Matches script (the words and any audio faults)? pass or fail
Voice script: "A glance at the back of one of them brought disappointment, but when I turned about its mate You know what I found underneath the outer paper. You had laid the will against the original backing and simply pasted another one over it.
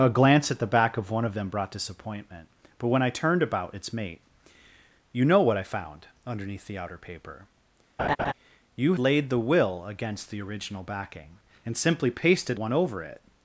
fail